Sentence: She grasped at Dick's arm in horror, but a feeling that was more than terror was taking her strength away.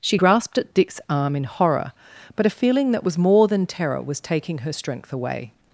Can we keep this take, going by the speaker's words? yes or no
yes